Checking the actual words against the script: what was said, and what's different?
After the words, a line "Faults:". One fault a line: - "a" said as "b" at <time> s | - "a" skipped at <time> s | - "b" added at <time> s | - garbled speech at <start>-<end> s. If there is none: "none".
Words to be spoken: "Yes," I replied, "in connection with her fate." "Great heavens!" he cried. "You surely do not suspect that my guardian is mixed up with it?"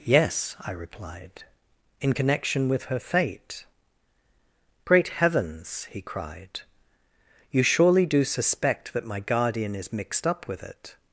"Yes," I replied, "in connection with her fate." "Great heavens!" he cried. "You surely do suspect that my guardian is mixed up with it?"
Faults:
- "not" skipped at 8.2 s